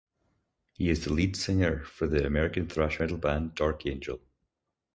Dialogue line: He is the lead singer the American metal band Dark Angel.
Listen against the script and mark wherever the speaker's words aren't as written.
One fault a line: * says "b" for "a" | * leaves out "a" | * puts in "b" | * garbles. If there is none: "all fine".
* puts in "for"
* puts in "thrash"